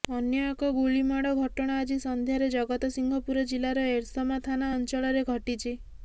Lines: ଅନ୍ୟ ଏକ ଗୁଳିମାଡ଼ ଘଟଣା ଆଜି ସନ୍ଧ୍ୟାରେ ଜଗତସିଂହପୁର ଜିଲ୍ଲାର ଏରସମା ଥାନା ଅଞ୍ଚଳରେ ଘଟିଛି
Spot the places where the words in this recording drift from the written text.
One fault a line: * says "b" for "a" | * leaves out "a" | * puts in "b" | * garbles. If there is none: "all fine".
all fine